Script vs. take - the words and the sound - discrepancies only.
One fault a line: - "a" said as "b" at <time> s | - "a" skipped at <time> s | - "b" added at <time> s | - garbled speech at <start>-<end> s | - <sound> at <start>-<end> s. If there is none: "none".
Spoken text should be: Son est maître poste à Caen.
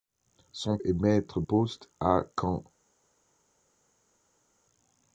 none